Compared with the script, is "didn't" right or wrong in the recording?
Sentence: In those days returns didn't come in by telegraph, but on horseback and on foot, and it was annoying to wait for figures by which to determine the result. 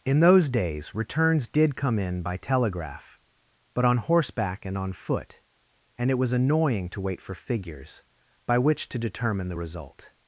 wrong